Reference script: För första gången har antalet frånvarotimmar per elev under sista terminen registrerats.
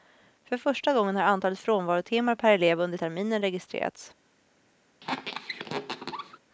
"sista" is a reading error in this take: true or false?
true